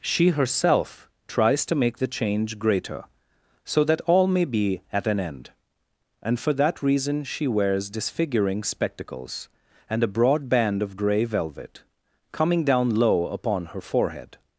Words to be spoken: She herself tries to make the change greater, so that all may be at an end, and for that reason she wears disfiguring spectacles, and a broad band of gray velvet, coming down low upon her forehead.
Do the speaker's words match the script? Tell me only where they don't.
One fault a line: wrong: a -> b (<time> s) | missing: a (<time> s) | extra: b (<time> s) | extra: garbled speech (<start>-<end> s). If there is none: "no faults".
no faults